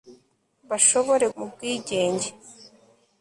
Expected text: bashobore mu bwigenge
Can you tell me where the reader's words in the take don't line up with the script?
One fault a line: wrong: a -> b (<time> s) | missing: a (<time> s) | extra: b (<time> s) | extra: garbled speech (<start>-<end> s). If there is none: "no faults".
no faults